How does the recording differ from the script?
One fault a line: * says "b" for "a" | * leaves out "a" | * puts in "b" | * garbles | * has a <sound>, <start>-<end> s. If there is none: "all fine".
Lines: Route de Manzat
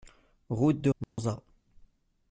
* has a dropout, 1.0-1.2 s